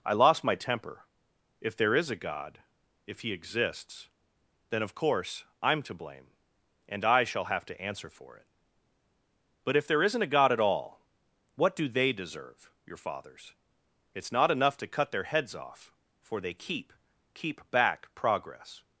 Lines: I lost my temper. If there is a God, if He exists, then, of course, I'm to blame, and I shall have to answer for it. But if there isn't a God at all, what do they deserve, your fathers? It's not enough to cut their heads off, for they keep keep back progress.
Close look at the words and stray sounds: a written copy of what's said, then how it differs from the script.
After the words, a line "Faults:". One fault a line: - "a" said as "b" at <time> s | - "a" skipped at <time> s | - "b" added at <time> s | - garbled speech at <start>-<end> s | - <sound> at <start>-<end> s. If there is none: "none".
I lost my temper. If there is a God, if He exists, then, of course, I'm to blame, and I shall have to answer for it. But if there isn't a God at all, what do they deserve, your fathers? It's not enough to cut their heads off, for they keep keep back progress.
Faults:
none